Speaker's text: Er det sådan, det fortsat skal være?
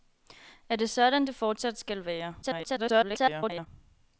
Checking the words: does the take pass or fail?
fail